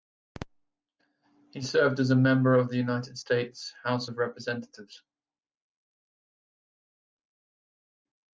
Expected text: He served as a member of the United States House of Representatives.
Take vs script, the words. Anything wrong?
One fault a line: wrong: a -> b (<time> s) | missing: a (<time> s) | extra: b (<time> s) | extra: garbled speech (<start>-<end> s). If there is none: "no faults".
no faults